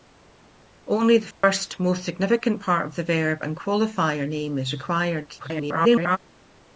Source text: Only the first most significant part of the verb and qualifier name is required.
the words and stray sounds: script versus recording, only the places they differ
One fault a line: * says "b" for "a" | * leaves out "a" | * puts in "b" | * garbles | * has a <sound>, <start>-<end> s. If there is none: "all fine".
* has a dropout, 1.3-1.4 s
* garbles